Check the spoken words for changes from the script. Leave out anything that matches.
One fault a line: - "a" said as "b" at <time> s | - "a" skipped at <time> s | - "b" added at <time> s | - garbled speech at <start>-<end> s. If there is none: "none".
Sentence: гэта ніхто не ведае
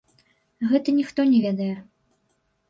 none